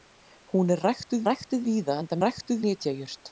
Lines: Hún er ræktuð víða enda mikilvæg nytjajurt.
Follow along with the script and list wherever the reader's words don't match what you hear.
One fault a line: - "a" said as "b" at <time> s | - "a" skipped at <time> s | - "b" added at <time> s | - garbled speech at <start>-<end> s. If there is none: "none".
- "ræktuð" added at 1.3 s
- "mikilvæg" said as "ræktuð" at 2.2 s